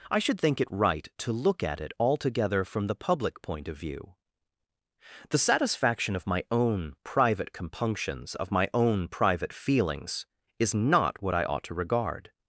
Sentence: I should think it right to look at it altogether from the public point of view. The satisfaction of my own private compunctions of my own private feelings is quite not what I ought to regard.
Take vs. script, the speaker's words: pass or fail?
fail